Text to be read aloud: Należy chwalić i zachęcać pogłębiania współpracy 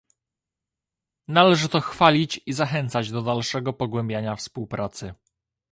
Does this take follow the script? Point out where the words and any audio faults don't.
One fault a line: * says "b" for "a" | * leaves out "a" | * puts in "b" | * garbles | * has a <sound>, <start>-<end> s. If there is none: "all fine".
* puts in "to"
* puts in "do dalszego"